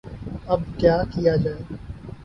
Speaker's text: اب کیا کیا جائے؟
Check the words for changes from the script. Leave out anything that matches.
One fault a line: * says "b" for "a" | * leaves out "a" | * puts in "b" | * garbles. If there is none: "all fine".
all fine